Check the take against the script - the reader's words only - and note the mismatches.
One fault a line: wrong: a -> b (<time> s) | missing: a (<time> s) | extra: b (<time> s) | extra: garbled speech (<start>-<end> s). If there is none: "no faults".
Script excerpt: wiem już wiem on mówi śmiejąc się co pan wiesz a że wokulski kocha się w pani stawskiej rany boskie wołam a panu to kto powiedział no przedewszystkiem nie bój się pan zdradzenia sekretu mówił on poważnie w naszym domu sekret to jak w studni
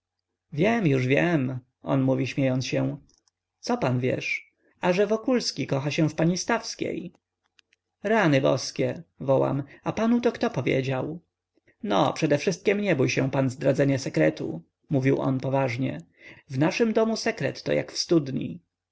no faults